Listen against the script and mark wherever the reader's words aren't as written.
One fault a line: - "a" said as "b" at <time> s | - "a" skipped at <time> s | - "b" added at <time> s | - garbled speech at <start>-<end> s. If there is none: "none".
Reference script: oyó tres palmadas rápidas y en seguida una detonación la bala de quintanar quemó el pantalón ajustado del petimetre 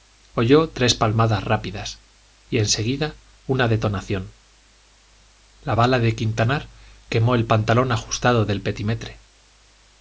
none